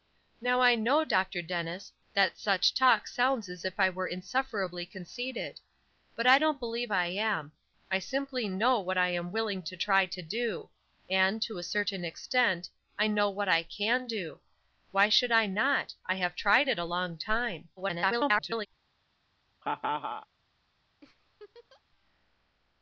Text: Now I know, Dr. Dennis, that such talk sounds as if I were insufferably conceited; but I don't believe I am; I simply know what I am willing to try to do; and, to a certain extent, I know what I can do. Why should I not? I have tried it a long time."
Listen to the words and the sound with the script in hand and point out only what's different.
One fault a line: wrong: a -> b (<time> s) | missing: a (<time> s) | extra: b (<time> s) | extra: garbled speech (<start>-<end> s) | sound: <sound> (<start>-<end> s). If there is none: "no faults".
extra: garbled speech (17.8-18.7 s)
sound: laugh (19.6-20.3 s)
sound: laugh (21.0-21.8 s)